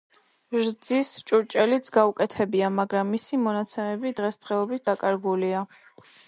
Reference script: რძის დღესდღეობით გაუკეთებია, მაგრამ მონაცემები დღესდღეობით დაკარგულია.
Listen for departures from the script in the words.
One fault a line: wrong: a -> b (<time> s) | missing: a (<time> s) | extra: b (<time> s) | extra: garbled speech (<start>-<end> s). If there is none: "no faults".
wrong: დღესდღეობით -> ჭურჭელიც (1.3 s)
extra: მისი (3.2 s)